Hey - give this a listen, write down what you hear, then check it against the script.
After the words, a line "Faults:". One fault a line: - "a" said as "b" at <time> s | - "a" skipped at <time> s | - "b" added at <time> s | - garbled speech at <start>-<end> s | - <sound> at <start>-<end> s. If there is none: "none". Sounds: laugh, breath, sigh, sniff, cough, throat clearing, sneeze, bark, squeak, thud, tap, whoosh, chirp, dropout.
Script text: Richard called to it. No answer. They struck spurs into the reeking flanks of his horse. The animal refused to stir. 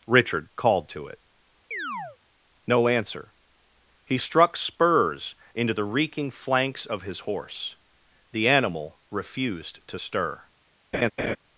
Richard called to it. No answer. He struck spurs into the reeking flanks of his horse. The animal refused to stir.
Faults:
- chirp at 1.7-2.2 s
- "They" said as "He" at 4.0 s
- laugh at 10.9-11.4 s